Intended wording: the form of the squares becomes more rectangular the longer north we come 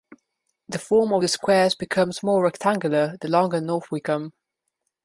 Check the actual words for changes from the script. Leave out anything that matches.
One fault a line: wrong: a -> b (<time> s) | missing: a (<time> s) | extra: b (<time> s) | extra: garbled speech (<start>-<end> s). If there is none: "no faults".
no faults